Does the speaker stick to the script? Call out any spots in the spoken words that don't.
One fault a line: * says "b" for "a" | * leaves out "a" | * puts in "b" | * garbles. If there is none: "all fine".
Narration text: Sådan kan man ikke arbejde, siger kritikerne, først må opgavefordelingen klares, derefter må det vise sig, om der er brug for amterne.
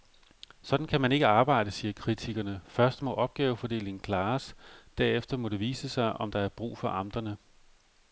all fine